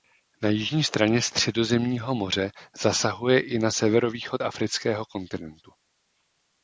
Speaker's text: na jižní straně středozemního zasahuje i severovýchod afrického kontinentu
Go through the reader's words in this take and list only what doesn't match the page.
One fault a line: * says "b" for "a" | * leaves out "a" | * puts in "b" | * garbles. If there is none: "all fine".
* puts in "moře"
* puts in "na"